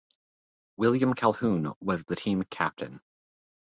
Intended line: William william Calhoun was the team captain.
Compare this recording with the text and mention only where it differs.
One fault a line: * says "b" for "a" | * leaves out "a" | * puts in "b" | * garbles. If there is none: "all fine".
* leaves out "william"